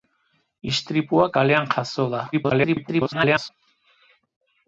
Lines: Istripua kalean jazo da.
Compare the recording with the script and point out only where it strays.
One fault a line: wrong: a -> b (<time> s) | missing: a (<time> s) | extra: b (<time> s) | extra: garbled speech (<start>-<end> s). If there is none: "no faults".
extra: garbled speech (2.3-3.5 s)